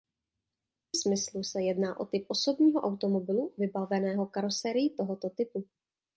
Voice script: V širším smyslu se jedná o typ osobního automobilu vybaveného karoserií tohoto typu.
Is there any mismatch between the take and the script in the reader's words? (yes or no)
yes